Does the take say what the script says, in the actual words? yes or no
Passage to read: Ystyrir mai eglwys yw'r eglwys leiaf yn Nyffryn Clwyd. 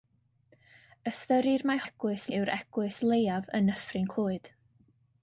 yes